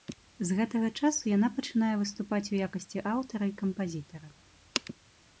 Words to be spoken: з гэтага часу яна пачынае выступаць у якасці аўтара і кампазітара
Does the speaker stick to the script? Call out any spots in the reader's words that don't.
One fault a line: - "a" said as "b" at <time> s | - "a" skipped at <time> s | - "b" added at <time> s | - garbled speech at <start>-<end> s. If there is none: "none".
none